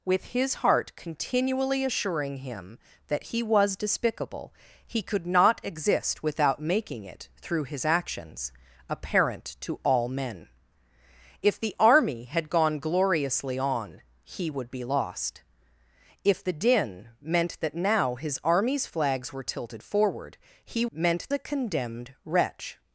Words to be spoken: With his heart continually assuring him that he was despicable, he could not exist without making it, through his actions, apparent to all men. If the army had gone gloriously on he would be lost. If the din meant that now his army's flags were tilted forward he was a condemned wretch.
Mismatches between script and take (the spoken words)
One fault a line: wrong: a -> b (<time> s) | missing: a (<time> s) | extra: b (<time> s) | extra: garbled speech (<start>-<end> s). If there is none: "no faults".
wrong: was -> meant (20.9 s)